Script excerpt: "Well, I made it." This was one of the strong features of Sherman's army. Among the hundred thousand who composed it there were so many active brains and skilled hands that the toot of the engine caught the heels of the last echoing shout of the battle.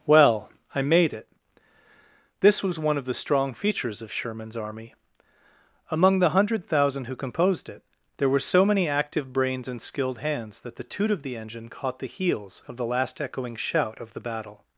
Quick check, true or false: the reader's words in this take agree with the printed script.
true